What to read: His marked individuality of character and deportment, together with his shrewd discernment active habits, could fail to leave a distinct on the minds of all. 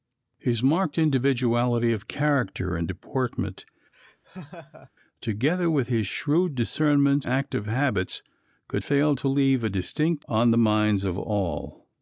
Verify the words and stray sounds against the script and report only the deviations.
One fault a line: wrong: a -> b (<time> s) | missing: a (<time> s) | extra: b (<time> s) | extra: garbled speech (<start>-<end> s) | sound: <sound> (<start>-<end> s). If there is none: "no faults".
sound: laugh (3.9-4.9 s)